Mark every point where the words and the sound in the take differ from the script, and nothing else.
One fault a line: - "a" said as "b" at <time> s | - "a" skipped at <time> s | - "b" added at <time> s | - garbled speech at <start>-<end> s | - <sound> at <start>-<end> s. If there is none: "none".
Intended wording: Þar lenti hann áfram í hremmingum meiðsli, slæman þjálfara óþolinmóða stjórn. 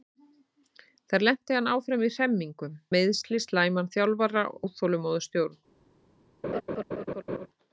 - laugh at 6.4-7.5 s